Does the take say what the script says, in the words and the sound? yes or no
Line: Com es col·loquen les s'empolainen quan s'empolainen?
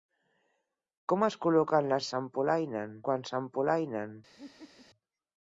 no